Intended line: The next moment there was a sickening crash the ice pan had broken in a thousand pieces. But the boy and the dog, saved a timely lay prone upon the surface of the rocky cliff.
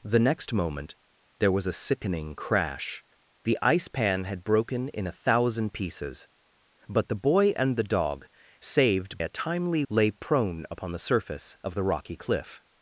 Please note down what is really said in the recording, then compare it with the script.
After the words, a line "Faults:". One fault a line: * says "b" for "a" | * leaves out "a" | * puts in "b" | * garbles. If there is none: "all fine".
The next moment there was a sickening crash the ice pan had broken in a thousand pieces. But the boy and the dog, saved a timely lay prone upon the surface of the rocky cliff.
Faults:
all fine